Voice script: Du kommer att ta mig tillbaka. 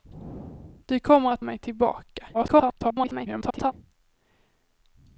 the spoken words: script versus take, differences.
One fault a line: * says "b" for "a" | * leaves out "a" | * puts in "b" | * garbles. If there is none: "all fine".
* leaves out "ta"
* garbles